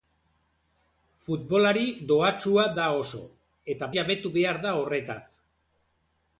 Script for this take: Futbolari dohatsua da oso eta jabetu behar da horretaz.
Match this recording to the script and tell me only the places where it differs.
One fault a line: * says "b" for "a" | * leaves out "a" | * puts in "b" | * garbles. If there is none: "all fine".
all fine